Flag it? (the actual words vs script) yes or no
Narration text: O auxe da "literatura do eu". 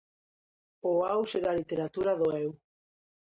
no